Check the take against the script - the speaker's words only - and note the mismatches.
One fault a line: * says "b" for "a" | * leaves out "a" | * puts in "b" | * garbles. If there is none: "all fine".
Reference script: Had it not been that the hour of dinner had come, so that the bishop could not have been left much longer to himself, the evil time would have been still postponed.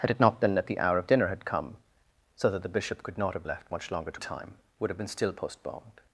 * leaves out "been"
* leaves out "himself the evil"